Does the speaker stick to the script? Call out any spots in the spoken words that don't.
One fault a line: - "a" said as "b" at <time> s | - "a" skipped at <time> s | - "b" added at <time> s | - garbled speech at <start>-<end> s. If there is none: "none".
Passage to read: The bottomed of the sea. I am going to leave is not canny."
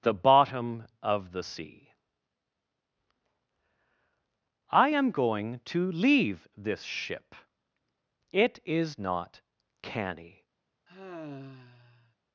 - "bottomed" said as "bottom" at 0.1 s
- "this ship It" added at 6.6 s